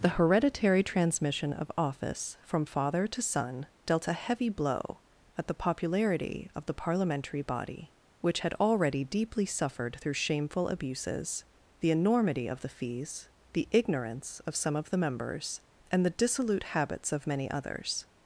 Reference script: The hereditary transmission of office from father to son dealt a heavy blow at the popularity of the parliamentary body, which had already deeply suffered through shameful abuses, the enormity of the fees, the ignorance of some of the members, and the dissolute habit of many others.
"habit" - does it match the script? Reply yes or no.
no